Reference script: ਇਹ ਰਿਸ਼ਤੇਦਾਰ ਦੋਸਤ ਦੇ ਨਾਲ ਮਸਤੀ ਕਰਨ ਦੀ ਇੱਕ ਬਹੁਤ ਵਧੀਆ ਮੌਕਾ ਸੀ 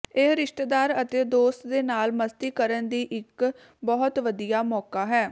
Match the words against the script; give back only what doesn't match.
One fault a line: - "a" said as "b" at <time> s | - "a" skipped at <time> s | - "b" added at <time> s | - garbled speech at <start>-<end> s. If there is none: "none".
- "ਅਤੇ" added at 1.0 s
- "ਸੀ" said as "ਹੈ" at 5.0 s